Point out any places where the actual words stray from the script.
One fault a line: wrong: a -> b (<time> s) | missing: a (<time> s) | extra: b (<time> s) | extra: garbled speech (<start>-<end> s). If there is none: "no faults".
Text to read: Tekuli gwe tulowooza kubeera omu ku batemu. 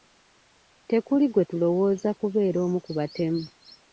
no faults